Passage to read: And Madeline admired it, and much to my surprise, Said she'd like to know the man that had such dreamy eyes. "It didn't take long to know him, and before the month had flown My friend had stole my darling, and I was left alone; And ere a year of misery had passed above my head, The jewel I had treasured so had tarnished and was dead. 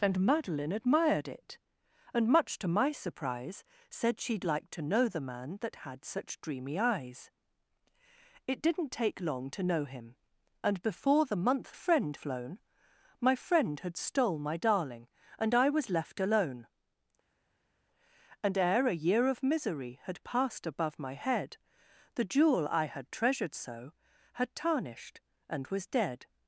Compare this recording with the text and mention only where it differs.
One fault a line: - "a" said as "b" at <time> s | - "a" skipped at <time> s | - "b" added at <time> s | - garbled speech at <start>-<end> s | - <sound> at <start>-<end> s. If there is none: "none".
- "had" said as "friend" at 11.7 s